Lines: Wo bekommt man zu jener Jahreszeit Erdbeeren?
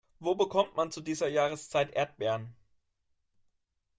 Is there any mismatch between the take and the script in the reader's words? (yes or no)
yes